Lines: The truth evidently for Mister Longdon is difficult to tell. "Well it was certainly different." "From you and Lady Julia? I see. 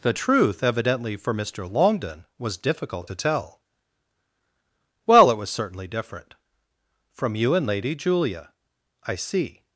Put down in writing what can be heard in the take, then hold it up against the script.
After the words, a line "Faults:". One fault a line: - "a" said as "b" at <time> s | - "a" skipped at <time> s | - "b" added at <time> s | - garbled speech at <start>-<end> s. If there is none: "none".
The truth evidently for Mister Longdon was difficult to tell. "Well it was certainly different." "From you and Lady Julia? I see.
Faults:
- "is" said as "was" at 2.4 s